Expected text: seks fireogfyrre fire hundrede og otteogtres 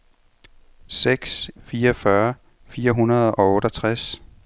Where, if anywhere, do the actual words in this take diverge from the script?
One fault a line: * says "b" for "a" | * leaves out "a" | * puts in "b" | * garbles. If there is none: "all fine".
all fine